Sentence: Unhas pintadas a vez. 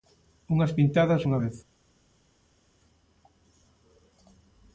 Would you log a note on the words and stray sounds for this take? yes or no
yes